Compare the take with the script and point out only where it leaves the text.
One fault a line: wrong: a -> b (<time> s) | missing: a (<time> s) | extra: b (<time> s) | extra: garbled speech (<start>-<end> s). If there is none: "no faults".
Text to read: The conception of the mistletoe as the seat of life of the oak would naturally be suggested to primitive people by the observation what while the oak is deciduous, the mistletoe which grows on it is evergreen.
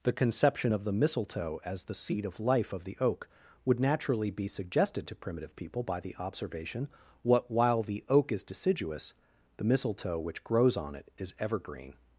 no faults